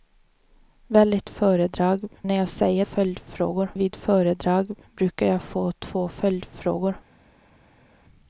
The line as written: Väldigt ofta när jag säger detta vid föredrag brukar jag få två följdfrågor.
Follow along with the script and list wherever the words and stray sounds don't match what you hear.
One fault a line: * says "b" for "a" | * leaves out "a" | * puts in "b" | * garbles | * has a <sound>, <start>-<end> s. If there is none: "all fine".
* says "föredrag" for "ofta"
* says "följdfrågor" for "detta"